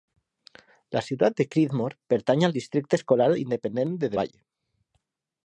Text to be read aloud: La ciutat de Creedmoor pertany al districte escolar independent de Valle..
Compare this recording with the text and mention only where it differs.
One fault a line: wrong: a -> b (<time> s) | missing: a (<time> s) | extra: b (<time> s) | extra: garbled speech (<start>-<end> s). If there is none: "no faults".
no faults